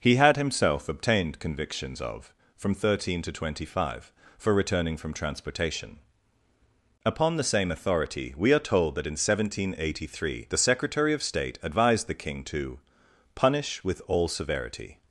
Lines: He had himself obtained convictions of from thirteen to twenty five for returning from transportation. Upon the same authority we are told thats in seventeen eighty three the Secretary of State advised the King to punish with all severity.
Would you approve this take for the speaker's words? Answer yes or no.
no